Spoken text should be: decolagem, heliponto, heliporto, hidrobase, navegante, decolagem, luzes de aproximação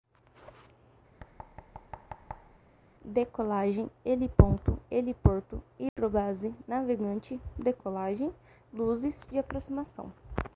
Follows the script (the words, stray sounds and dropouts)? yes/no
no